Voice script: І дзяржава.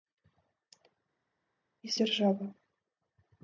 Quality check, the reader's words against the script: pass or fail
pass